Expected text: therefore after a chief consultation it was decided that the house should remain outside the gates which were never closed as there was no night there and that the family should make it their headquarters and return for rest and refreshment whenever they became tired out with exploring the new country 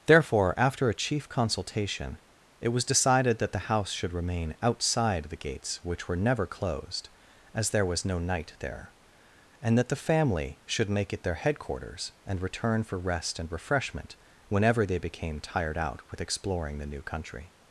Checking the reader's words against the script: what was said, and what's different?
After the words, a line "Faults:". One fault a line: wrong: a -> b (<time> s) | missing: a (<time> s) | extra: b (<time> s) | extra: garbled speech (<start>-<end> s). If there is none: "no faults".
therefore after a chief consultation it was decided that the house should remain outside the gates which were never closed as there was no night there and that the family should make it their headquarters and return for rest and refreshment whenever they became tired out with exploring the new country
Faults:
no faults